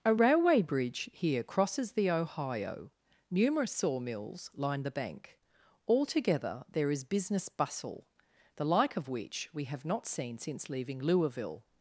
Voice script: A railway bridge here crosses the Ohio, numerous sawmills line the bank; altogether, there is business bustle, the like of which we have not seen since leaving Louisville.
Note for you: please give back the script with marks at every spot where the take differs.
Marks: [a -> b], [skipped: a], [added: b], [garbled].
A railway bridge here crosses the Ohio, numerous sawmills line the bank; altogether, there is business bustle, the like of which we have not seen since leaving Louisville.